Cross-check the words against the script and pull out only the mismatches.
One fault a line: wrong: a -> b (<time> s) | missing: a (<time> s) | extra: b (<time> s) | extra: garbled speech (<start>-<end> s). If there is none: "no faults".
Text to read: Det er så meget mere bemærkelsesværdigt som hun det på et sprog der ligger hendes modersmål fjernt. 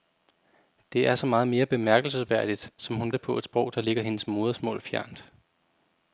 no faults